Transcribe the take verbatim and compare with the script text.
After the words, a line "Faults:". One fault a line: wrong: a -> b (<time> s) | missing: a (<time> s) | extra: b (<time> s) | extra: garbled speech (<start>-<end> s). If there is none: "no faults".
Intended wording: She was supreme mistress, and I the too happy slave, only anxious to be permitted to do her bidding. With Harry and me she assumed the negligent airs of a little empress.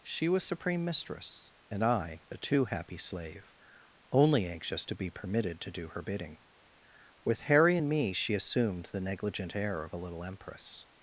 She was supreme mistress, and I the too happy slave, only anxious to be permitted to do her bidding. With Harry and me she assumed the negligent air of a little empress.
Faults:
wrong: airs -> air (9.5 s)